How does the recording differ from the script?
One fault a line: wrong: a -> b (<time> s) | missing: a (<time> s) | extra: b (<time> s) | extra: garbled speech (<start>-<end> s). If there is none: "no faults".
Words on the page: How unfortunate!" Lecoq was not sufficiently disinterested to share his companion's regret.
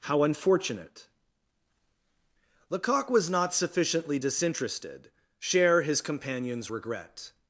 missing: to (5.1 s)